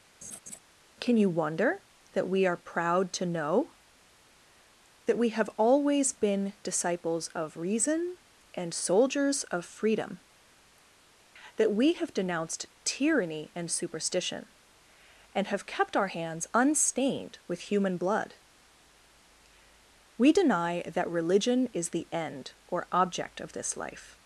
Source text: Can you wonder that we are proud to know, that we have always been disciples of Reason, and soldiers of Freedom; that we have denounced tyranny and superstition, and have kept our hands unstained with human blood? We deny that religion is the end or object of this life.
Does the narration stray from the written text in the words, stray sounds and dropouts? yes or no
yes